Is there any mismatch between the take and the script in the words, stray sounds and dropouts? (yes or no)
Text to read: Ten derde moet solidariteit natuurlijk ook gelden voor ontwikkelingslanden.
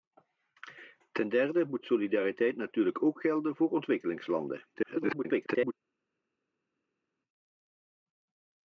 yes